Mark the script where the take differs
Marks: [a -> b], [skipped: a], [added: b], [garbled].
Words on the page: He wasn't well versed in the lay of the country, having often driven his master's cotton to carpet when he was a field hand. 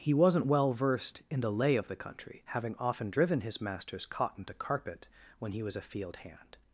He wasn't well versed in the lay of the country, having often driven his master's cotton to carpet when he was a field hand.